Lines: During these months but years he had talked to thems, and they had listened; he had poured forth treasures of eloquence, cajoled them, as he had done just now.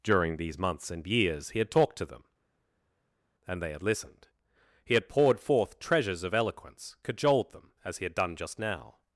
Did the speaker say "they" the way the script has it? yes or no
yes